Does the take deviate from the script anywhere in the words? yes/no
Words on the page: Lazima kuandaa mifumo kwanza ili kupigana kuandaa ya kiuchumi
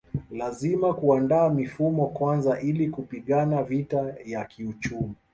yes